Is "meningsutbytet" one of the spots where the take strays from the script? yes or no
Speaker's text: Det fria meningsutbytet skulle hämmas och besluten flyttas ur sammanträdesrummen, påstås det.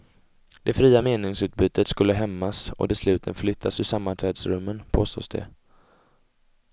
no